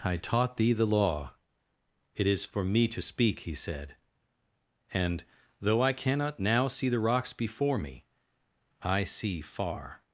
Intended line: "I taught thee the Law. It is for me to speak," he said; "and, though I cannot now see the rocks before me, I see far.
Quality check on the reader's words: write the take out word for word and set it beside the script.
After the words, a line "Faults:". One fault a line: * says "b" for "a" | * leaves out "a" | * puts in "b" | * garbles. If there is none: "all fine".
"I taught thee the Law. It is for me to speak," he said; "and, though I cannot now see the rocks before me, I see far.
Faults:
all fine